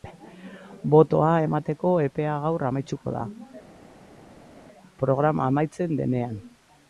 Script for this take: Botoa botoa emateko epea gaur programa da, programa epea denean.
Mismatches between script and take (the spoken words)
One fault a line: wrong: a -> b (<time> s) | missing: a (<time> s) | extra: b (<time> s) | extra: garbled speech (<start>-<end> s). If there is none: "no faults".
missing: botoa (1.3 s)
wrong: programa -> amaituko (2.7 s)
wrong: epea -> amaitzen (5.5 s)